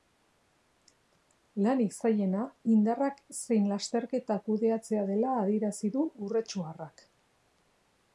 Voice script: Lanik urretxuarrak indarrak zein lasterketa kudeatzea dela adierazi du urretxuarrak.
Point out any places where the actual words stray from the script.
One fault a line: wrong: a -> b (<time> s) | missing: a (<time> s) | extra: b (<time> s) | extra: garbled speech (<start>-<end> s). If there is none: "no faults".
wrong: urretxuarrak -> zailena (2.0 s)